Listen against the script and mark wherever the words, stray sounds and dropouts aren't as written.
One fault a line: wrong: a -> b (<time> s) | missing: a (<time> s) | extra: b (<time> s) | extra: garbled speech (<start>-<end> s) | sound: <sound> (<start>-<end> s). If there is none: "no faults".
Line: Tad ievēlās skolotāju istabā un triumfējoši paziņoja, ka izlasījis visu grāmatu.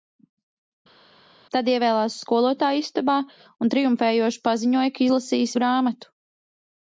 missing: visu (5.6 s)